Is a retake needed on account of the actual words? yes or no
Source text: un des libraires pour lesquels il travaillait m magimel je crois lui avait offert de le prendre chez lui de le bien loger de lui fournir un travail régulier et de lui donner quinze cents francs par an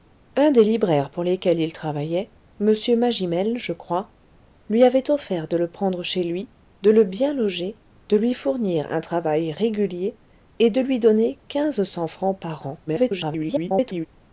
yes